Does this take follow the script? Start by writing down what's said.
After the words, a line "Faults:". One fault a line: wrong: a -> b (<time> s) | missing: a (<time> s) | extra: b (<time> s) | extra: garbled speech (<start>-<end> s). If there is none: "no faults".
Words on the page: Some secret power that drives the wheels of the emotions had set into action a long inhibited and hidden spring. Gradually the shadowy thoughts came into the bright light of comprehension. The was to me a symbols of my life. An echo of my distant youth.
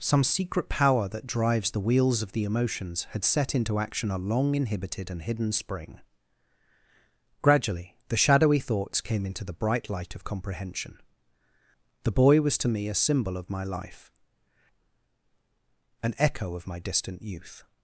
Some secret power that drives the wheels of the emotions had set into action a long inhibited and hidden spring. Gradually the shadowy thoughts came into the bright light of comprehension. The boy was to me a symbol of my life. An echo of my distant youth.
Faults:
extra: boy (12.2 s)
wrong: symbols -> symbol (13.0 s)